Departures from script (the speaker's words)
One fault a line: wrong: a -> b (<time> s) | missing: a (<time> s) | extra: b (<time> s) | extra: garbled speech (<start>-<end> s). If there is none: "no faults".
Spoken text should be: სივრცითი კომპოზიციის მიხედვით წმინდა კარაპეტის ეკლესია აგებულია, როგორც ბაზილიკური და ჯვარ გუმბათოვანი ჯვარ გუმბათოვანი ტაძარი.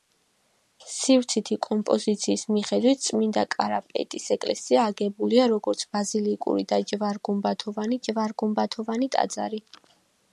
no faults